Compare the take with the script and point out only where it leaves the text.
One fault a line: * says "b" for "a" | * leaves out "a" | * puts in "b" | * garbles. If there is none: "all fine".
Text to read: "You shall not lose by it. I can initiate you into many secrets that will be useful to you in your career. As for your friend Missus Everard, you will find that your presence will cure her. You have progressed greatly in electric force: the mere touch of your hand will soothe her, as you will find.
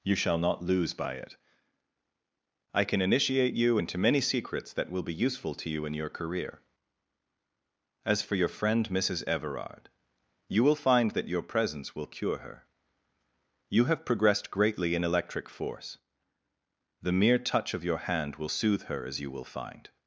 all fine